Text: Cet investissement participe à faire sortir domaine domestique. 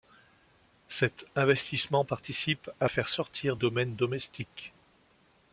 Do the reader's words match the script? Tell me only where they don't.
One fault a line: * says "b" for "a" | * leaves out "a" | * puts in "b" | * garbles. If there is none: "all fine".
all fine